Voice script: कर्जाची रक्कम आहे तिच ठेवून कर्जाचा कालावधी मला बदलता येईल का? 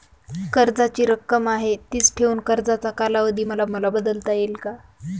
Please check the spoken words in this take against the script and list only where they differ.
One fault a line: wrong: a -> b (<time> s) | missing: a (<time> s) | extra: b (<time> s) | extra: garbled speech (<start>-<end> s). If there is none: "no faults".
extra: मला (3.7 s)